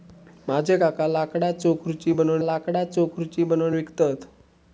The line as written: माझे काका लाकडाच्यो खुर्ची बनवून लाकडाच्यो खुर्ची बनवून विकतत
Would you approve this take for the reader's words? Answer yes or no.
yes